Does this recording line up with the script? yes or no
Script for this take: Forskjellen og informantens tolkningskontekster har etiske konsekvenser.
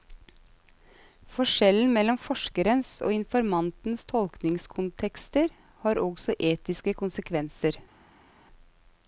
no